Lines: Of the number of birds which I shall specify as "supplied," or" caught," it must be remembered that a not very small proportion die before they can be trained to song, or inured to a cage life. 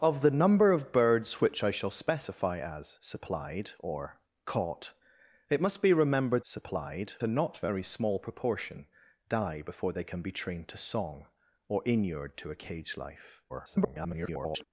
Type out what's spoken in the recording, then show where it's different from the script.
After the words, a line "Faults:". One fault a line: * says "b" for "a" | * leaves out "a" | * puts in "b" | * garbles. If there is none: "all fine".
Of the number of birds which I shall specify as "supplied," or" caught," it must be remembered supplied a not very small proportion die before they can be trained to song, or inured to a cage life. [garbled]
Faults:
* says "supplied" for "that"
* garbles